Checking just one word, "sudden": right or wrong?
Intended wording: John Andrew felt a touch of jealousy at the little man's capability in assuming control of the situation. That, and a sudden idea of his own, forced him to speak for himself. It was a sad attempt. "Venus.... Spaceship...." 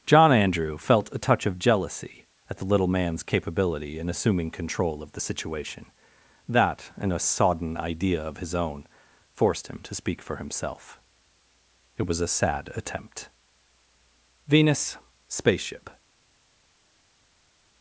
wrong